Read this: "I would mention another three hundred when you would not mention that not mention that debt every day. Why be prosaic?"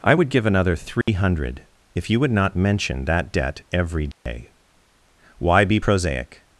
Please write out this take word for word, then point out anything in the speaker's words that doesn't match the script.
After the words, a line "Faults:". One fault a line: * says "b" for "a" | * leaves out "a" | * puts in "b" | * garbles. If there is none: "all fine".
"I would give another three hundred if you would not mention that debt every day. Why be prosaic?"
Faults:
* says "give" for "mention"
* says "if" for "when"
* leaves out "not mention that"